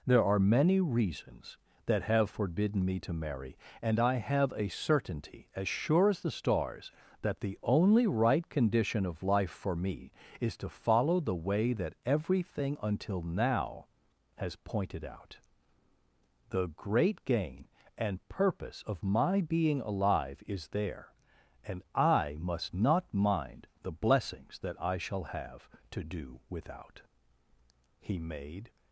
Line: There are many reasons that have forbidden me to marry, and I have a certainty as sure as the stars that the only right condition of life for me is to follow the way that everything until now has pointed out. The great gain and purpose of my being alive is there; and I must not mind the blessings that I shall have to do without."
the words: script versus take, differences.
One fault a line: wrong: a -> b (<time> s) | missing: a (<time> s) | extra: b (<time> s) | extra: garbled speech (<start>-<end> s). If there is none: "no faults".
extra: He made (28.0 s)